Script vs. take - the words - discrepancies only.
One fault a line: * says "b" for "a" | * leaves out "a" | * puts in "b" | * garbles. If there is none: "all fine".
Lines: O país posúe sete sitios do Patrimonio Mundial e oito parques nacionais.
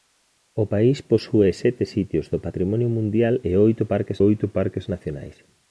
* puts in "oito parques"